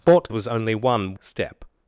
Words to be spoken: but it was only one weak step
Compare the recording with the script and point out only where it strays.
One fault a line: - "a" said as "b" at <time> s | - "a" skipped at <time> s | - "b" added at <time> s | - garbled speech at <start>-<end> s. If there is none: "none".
- "it" skipped at 0.3 s
- "weak" skipped at 1.1 s